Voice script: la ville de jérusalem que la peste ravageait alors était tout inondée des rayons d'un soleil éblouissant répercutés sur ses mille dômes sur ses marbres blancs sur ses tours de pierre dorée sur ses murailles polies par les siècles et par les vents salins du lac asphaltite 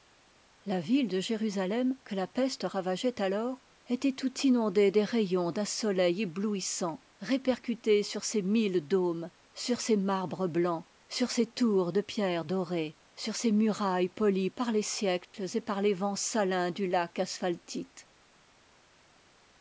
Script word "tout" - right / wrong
right